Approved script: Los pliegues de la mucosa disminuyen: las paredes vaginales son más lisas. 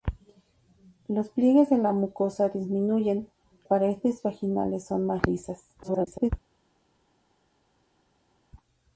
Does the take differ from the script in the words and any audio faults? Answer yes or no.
yes